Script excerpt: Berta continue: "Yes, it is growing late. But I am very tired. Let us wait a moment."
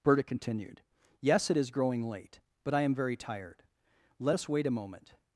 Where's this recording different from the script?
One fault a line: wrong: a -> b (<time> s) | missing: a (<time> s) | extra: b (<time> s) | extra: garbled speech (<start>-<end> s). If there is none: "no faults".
wrong: continue -> continued (0.2 s)